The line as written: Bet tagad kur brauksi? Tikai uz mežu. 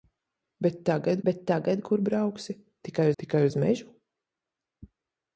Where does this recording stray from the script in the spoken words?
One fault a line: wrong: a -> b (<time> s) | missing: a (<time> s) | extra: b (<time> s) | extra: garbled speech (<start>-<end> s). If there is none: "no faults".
extra: bet tagad (1.3 s)
extra: tikai (3.2 s)